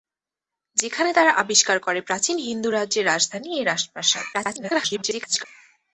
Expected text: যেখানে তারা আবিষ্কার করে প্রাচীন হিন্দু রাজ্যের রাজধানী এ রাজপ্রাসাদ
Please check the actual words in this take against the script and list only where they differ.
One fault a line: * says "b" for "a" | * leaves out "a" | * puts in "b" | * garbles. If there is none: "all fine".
* garbles